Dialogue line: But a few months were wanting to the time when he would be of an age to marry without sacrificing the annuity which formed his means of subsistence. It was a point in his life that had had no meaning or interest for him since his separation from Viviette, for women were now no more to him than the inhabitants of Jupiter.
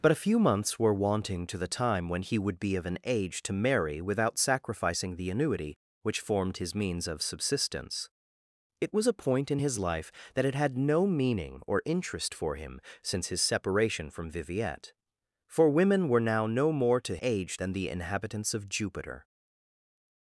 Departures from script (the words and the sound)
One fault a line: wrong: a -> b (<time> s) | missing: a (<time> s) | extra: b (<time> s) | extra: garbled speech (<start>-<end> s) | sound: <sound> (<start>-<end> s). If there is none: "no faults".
wrong: him -> age (17.2 s)